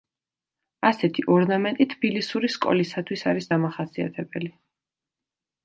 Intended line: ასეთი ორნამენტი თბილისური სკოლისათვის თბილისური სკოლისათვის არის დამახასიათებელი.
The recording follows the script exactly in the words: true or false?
false